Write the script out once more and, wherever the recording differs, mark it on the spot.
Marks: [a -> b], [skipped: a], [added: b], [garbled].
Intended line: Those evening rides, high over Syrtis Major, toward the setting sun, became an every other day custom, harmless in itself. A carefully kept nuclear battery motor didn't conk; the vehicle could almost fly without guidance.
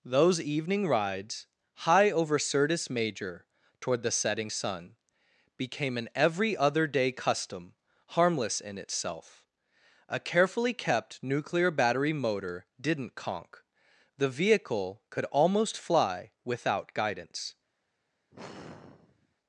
Those evening rides, high over Syrtis Major, toward the setting sun, became an every other day custom, harmless in itself. A carefully kept nuclear battery motor didn't conk; the vehicle could almost fly without guidance.